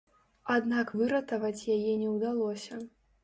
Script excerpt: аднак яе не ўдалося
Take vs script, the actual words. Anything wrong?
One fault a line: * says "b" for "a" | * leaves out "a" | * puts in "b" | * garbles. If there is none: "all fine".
* puts in "выратаваць"